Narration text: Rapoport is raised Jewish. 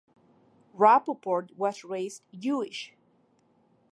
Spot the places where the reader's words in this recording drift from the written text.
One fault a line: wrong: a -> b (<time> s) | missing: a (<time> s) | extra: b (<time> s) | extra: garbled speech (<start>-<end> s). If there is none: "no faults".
wrong: is -> was (1.6 s)